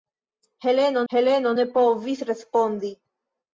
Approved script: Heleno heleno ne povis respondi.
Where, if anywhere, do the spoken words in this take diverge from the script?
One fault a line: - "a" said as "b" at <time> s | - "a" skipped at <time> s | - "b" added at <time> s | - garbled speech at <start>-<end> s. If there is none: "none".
none